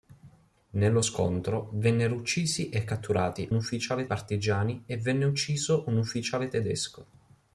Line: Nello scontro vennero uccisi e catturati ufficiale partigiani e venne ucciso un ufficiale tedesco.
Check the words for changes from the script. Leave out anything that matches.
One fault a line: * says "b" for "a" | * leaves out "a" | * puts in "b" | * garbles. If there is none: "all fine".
all fine